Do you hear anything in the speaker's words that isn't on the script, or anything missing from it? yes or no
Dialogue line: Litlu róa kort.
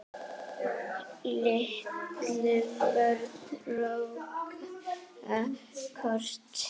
yes